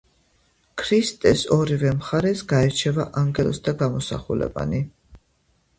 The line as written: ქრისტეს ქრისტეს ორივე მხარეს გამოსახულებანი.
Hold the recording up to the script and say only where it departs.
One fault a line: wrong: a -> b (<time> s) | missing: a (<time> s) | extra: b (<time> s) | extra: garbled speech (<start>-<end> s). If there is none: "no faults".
missing: ქრისტეს (1.4 s)
extra: გაირჩევა ანგელოზთა (2.5 s)